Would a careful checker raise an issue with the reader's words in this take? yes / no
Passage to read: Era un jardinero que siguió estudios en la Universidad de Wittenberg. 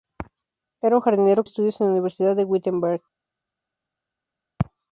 yes